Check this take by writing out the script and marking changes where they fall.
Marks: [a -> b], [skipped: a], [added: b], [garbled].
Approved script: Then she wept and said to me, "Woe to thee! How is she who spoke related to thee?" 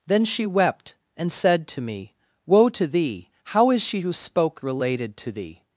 Then she wept and said to me, "Woe to thee! How is she who spoke related to thee?"